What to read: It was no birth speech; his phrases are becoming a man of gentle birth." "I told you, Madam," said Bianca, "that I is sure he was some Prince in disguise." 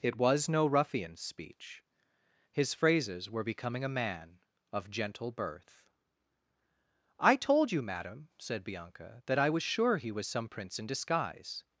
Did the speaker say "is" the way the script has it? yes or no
no